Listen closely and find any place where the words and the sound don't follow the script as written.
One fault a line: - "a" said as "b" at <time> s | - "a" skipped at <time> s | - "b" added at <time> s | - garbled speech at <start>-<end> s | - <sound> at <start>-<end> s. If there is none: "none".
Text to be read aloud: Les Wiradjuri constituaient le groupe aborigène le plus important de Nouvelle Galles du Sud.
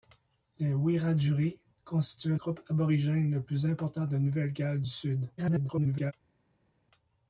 - "le" skipped at 2.4 s
- garbled speech at 5.4-6.1 s